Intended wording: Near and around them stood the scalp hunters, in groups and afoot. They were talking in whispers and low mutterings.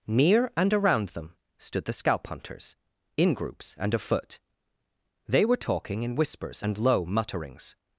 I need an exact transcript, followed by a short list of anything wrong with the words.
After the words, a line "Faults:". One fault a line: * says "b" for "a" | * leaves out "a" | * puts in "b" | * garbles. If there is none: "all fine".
Near and around them stood the scalp hunters, in groups and afoot. They were talking in whispers and low mutterings.
Faults:
all fine